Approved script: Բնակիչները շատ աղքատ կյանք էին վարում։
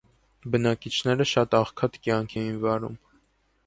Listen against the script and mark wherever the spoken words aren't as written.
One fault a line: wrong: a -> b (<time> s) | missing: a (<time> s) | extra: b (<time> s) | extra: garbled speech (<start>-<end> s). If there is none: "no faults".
no faults